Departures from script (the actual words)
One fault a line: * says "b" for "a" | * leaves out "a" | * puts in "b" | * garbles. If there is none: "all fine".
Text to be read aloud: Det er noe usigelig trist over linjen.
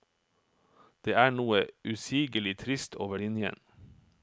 all fine